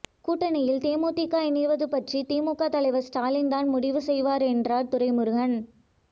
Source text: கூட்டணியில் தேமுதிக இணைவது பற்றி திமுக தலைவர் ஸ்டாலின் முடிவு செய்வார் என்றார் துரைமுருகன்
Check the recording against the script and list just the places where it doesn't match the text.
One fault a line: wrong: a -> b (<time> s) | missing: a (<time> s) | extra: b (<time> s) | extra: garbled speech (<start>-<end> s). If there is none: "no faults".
extra: தான் (3.5 s)